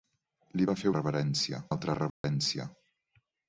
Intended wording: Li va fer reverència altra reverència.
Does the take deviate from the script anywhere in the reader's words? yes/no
no